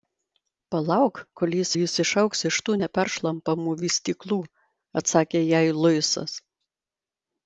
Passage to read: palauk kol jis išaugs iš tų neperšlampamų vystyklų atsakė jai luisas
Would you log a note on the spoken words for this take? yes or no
yes